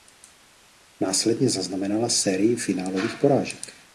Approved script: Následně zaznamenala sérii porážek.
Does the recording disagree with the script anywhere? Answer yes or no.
yes